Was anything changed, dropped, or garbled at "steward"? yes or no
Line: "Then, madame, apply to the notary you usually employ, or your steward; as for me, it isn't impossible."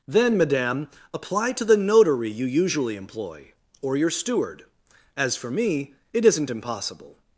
no